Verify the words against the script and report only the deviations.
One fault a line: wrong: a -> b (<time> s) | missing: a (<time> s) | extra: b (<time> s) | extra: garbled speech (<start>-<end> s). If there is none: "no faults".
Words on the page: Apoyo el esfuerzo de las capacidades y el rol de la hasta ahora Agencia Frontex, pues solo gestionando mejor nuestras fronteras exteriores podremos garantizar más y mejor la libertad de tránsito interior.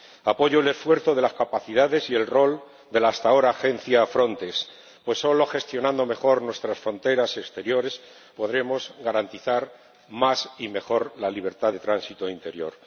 no faults